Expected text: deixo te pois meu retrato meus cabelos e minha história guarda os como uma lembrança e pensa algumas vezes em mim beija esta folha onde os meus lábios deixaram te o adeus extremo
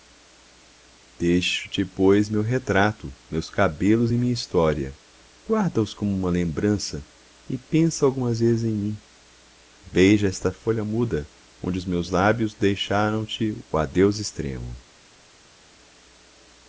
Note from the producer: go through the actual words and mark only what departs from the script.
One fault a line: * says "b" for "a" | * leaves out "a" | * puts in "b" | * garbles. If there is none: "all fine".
* puts in "muda"